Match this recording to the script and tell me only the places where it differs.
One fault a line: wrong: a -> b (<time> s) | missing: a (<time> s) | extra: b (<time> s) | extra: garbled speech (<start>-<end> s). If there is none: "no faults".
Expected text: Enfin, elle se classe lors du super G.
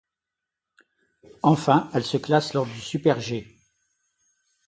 no faults